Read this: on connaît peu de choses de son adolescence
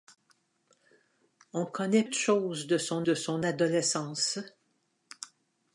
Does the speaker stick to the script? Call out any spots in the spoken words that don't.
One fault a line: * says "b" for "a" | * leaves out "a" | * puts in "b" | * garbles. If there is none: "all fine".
* says "de choses" for "peu"
* says "son" for "choses"